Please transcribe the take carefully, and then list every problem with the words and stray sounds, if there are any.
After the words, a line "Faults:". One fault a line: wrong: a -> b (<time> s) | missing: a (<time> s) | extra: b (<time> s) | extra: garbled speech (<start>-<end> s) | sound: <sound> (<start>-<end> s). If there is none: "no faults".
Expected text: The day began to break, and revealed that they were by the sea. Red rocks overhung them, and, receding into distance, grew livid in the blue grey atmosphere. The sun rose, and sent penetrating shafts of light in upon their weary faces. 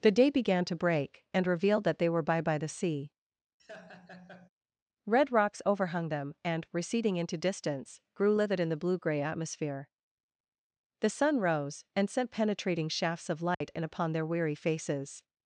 The day began to break, and revealed that they were by by the sea. Red rocks overhung them, and, receding into distance, grew livid in the blue grey atmosphere. The sun rose, and sent penetrating shafts of light in upon their weary faces.
Faults:
extra: by (2.4 s)
sound: laugh (3.6-4.5 s)
sound: dropout (13.5-13.6 s)